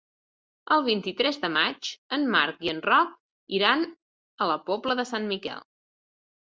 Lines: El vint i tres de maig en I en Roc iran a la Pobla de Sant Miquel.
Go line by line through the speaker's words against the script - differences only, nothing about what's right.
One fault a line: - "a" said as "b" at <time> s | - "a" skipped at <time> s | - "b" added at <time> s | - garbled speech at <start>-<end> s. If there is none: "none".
- "Marc" added at 2.4 s